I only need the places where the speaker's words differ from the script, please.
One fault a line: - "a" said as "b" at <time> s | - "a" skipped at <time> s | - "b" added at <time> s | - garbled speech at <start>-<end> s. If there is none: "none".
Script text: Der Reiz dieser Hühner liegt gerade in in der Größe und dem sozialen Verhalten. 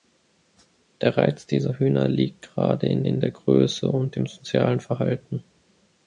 none